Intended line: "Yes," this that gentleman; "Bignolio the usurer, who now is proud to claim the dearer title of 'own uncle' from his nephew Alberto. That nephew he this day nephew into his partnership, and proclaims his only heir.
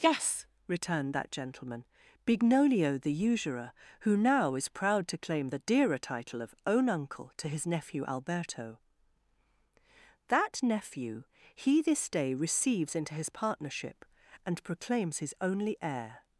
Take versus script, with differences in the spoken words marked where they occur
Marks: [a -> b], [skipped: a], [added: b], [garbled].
"Yes," [this -> returned] that gentleman; "Bignolio the usurer, who now is proud to claim the dearer title of 'own uncle' [from -> to] his nephew Alberto. That nephew he this day [nephew -> receives] into his partnership, and proclaims his only heir.